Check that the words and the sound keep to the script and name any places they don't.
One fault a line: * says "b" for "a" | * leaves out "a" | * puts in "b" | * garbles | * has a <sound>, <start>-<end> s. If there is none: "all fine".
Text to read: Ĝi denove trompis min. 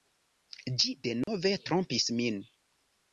* has a dropout, 1.2-1.3 s